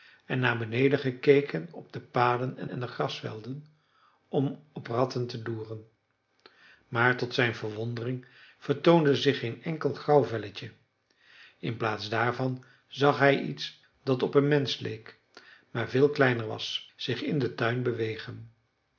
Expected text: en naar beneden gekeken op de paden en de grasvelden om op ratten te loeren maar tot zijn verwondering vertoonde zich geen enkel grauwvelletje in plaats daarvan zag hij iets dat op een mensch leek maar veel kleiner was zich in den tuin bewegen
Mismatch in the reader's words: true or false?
true